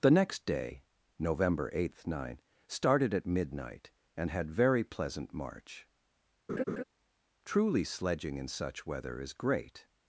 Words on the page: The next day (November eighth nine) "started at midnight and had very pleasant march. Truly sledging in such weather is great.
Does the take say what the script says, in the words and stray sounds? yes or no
no